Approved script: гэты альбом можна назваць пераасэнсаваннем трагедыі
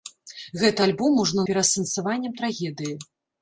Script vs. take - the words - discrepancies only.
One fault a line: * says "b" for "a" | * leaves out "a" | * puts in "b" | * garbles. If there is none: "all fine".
* leaves out "назваць"